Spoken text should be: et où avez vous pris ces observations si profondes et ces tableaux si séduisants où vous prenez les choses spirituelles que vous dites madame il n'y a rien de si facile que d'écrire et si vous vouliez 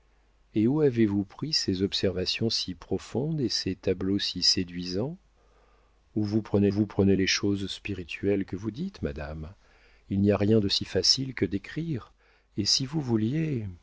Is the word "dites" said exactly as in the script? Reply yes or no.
yes